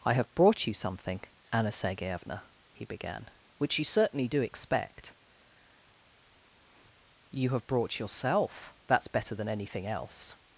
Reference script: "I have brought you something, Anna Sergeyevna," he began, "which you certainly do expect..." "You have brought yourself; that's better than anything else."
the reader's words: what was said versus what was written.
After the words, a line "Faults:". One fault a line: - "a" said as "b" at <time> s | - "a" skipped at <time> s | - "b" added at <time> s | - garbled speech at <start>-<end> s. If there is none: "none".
"I have brought you something, Anna Sergeyevna," he began, "which you certainly do expect..." "You have brought yourself; that's better than anything else."
Faults:
none